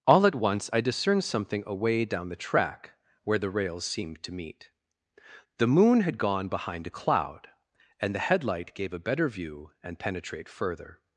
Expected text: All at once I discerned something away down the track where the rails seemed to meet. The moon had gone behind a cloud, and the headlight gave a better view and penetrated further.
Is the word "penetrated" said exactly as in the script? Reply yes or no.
no